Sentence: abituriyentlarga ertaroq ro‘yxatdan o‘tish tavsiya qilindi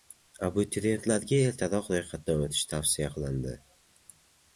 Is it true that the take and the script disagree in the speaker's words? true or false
false